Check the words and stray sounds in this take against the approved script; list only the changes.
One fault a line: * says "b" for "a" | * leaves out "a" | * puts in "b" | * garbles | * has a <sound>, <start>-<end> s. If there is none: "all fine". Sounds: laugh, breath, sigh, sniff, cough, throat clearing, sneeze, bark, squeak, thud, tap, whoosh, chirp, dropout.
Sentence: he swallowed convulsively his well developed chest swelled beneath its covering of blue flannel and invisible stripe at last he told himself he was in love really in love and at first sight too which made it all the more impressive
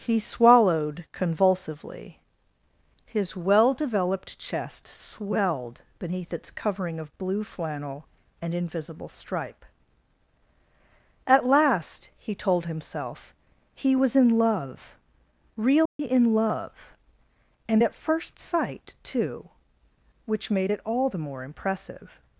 * has a dropout, 15.9-16.0 s